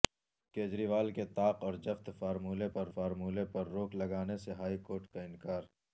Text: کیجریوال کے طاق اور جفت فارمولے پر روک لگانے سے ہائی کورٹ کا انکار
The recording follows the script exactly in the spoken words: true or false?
false